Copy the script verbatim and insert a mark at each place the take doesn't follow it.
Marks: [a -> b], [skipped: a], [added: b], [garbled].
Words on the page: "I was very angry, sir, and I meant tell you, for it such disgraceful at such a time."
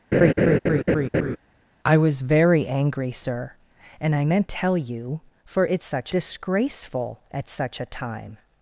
"I was very angry, sir, and I meant tell you, for it such disgraceful at such a time."